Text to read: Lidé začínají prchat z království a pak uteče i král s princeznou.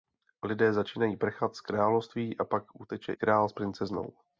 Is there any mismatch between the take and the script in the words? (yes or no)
yes